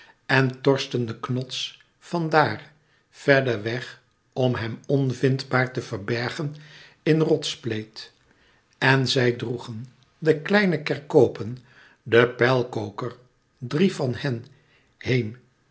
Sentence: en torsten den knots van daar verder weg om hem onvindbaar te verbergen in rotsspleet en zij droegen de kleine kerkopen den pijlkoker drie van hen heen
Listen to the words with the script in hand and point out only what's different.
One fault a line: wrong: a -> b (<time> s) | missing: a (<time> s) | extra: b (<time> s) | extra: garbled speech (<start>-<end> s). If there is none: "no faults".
no faults